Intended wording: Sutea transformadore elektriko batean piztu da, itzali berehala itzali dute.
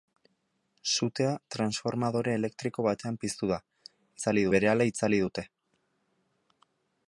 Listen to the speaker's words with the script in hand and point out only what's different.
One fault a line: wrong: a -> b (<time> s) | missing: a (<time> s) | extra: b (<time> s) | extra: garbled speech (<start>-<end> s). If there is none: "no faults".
no faults